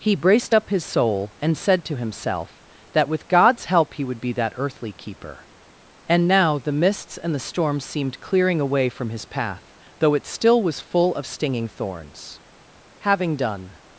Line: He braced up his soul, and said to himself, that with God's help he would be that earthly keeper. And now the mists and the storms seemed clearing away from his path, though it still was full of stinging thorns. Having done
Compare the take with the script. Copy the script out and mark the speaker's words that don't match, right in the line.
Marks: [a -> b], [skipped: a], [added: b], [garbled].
He braced up his soul, and said to himself, that with God's help he would be that earthly keeper. And now the mists and the storms seemed clearing away from his path, though it still was full of stinging thorns. Having done